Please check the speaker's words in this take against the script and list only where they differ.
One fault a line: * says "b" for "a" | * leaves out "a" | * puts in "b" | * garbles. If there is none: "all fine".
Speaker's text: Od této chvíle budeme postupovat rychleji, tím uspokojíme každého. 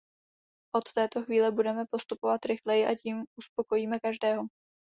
* puts in "a"